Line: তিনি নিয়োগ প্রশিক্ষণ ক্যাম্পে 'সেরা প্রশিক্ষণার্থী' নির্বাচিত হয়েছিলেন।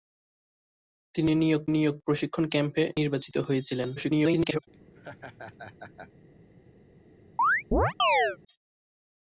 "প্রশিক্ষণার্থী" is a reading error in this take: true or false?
true